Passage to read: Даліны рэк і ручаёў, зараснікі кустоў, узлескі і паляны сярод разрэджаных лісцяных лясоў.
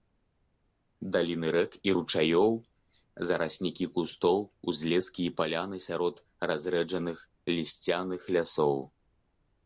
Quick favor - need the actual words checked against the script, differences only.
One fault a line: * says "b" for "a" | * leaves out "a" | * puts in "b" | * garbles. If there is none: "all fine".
all fine